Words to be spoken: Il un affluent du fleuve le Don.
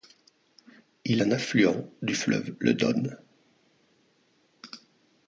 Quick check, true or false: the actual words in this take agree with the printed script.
true